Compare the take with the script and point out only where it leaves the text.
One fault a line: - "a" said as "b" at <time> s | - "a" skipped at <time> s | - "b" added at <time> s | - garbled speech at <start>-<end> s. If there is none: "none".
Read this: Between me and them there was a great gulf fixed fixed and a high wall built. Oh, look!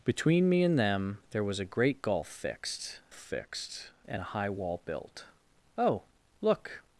none